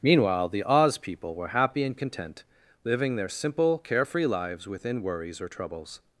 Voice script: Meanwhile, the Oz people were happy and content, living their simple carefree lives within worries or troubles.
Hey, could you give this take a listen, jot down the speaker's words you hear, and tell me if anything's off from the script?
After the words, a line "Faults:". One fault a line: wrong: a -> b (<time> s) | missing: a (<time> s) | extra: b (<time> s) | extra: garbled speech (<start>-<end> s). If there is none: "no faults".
Meanwhile, the Oz people were happy and content, living their simple carefree lives within worries or troubles.
Faults:
no faults